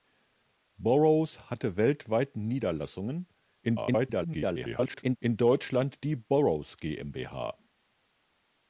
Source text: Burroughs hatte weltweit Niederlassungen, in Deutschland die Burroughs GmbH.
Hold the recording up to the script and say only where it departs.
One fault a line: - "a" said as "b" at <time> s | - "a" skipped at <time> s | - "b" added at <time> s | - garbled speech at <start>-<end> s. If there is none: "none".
- garbled speech at 3.6-5.2 s